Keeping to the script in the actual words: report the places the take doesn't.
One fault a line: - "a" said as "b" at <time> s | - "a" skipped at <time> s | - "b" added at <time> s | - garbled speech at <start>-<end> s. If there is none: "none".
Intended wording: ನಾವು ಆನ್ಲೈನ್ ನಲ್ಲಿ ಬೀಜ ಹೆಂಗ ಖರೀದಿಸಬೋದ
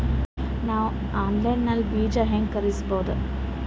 none